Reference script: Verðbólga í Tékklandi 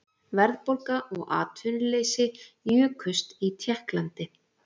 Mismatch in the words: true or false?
true